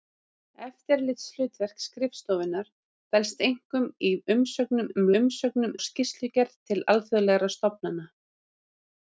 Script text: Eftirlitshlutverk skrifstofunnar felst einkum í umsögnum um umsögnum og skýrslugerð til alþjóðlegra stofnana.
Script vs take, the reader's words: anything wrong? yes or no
no